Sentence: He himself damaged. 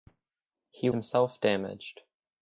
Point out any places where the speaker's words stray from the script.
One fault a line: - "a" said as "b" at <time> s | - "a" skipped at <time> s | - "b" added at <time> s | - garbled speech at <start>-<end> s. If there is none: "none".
none